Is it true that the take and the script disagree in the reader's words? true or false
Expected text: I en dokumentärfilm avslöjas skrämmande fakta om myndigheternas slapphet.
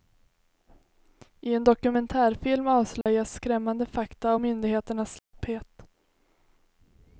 true